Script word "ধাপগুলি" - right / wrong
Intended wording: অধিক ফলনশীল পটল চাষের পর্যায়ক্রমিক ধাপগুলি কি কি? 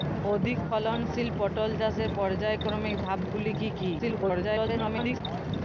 right